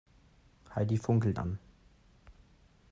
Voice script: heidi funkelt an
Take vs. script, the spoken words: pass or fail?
pass